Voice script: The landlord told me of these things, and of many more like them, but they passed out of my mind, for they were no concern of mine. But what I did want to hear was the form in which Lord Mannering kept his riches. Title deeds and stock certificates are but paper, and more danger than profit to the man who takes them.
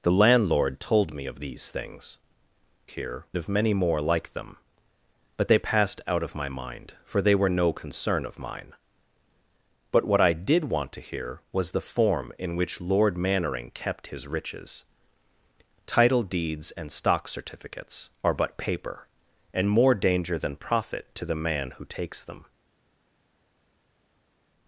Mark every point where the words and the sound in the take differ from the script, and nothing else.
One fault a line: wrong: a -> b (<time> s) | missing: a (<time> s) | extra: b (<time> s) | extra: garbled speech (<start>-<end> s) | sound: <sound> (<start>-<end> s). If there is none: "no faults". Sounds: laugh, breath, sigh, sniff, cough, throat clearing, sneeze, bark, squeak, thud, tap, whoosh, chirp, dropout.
wrong: and -> hear (2.9 s)